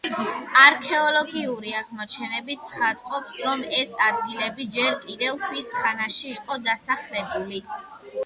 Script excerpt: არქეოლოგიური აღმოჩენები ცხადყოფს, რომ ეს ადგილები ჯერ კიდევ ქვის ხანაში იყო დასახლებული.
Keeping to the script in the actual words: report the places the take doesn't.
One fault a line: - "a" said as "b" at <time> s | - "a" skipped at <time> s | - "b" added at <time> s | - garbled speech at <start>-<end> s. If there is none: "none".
none